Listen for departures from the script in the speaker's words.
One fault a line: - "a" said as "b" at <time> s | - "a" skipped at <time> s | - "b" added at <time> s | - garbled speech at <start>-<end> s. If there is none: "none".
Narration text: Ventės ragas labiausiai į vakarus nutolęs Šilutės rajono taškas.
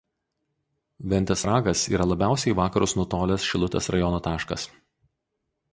- "yra" added at 1.9 s